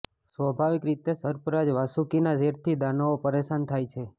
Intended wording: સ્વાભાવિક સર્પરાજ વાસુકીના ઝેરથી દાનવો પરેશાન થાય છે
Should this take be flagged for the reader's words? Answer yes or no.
yes